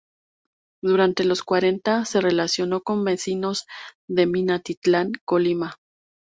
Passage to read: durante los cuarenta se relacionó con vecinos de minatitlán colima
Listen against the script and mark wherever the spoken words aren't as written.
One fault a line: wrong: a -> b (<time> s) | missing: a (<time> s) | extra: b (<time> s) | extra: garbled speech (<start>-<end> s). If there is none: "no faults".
no faults